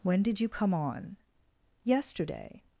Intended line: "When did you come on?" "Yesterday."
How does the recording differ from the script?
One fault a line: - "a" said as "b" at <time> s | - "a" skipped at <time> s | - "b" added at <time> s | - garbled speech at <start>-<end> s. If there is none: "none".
none